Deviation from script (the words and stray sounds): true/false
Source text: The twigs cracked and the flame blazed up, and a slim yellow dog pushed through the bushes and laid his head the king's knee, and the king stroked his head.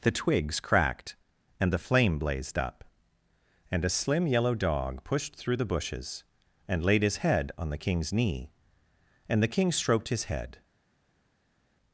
true